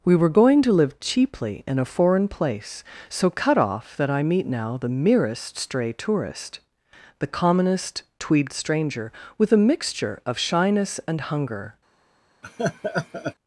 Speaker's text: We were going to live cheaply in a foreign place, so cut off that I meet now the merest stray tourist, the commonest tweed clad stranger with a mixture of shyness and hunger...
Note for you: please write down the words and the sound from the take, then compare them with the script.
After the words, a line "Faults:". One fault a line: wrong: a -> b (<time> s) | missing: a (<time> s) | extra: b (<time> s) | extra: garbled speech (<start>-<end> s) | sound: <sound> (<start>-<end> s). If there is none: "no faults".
We were going to live cheaply in a foreign place, so cut off that I meet now the merest stray tourist, the commonest tweed stranger with a mixture of shyness and hunger...
Faults:
missing: clad (8.5 s)
sound: laugh (12.4-13.3 s)